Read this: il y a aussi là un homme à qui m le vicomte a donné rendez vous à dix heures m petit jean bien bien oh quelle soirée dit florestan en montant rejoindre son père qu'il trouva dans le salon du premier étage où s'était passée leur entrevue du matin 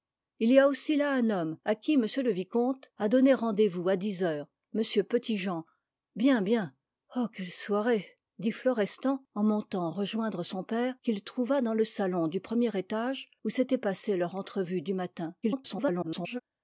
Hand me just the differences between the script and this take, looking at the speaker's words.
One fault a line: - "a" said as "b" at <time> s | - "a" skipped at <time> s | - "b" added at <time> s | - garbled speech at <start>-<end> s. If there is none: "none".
- garbled speech at 15.4-16.4 s